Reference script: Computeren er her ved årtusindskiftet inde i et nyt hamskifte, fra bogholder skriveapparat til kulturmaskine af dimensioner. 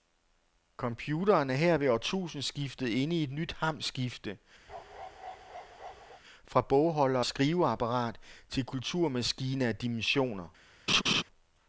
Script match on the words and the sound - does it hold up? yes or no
no